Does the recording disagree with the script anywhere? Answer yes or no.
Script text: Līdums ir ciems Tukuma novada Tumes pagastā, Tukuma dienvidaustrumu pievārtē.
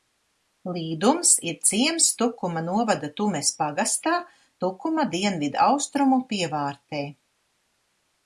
no